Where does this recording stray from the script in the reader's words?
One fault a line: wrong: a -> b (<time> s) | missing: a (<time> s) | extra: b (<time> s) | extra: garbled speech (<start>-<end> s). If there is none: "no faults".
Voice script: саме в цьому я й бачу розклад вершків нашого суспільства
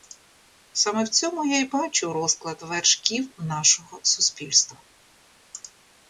no faults